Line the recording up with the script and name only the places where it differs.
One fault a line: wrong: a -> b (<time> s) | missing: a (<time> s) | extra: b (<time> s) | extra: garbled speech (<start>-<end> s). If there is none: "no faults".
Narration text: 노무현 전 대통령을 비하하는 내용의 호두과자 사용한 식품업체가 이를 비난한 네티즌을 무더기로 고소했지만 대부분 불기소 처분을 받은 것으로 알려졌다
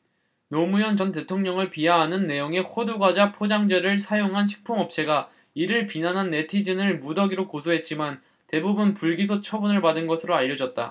extra: 포장재를 (3.3 s)